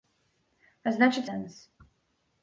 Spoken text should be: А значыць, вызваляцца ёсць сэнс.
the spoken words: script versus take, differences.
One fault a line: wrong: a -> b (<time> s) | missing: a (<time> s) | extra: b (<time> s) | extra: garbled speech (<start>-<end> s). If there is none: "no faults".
missing: вызваляцца ёсць (1.2 s)